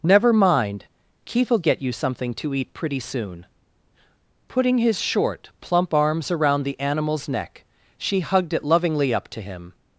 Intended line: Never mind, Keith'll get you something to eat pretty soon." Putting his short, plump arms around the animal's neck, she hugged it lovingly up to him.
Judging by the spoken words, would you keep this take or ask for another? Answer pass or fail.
pass